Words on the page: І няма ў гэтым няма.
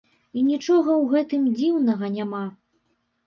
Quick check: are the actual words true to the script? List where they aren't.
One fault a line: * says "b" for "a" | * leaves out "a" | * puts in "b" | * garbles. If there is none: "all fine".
* says "нічога" for "няма"
* puts in "дзіўнага"